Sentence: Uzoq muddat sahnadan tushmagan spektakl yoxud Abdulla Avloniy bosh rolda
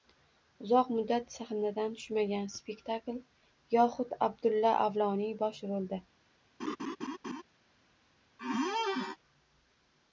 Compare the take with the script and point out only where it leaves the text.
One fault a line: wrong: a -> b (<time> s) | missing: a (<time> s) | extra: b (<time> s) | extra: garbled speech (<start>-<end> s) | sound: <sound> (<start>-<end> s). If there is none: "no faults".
sound: laugh (6.6-7.4 s)
sound: squeak (8.4-9.2 s)